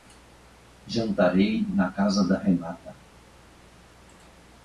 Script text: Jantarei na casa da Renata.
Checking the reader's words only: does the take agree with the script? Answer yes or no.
yes